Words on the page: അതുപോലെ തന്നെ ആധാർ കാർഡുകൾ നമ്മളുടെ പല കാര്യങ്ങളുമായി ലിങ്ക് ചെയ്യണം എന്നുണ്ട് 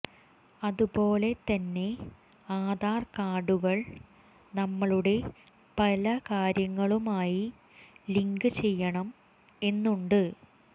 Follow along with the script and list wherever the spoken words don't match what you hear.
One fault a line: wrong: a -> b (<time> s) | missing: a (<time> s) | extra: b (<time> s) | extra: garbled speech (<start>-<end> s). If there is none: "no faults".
no faults